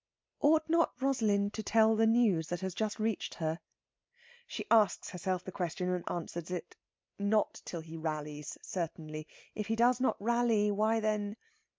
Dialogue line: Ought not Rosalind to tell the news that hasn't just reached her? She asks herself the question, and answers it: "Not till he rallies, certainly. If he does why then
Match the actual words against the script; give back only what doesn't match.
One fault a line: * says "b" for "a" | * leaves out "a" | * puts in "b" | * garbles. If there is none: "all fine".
* says "has" for "hasn't"
* puts in "not rally"